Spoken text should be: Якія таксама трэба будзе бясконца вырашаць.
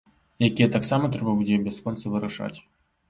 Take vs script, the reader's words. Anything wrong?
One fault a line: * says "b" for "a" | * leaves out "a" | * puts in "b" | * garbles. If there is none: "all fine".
all fine